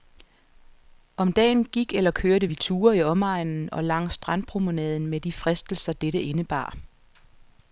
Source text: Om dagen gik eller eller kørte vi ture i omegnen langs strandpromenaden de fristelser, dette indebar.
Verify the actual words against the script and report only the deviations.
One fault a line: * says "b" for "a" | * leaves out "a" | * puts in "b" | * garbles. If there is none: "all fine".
* leaves out "eller"
* puts in "og"
* puts in "med"